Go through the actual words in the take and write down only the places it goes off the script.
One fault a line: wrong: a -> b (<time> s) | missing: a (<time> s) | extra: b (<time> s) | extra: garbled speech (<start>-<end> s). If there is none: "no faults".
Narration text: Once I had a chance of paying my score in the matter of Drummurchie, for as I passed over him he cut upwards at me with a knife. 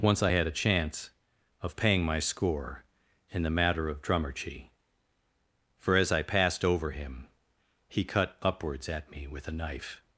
no faults